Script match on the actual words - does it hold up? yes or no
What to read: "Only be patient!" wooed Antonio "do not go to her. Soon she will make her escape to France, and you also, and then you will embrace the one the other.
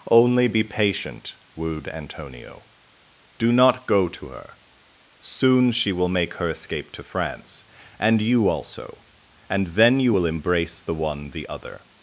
yes